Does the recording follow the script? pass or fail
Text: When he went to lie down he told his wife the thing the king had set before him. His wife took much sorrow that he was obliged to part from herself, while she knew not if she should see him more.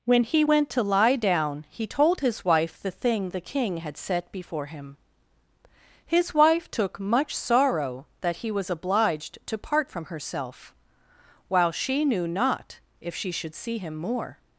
pass